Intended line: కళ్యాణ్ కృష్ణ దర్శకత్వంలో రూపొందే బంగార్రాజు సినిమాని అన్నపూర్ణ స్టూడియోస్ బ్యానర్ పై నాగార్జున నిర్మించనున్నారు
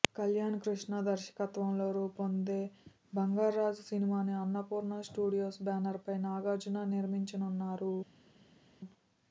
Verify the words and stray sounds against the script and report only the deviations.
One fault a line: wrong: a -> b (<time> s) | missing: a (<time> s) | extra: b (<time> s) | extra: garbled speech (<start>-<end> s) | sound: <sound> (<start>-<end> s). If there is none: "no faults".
no faults